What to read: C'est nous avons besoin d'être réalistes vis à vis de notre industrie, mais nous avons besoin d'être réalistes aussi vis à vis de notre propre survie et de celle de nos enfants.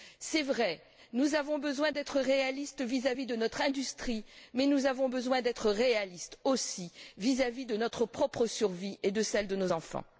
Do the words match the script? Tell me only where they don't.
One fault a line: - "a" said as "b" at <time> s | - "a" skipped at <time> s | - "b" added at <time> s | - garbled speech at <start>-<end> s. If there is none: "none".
- "vrai" added at 0.4 s